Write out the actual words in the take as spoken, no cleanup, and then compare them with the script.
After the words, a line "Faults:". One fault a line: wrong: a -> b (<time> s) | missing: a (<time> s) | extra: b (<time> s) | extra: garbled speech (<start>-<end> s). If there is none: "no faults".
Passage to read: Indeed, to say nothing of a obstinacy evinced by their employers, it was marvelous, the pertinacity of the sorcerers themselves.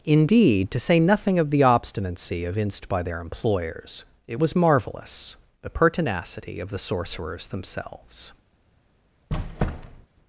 Indeed, to say nothing of the obstinacy evinced by their employers, it was marvelous, the pertinacity of the sorcerers themselves.
Faults:
wrong: a -> the (1.5 s)